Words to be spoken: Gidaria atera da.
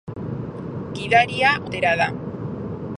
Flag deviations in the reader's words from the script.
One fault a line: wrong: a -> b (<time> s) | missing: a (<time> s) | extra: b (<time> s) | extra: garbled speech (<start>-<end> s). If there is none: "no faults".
no faults